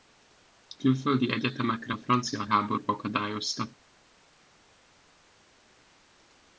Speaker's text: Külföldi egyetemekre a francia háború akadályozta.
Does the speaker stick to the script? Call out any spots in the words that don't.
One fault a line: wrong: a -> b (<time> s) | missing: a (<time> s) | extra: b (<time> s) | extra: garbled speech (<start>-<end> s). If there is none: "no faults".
no faults